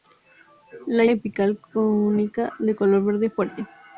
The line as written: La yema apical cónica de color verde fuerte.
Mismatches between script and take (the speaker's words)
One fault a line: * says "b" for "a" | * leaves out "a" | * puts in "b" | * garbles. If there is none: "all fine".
* leaves out "yema"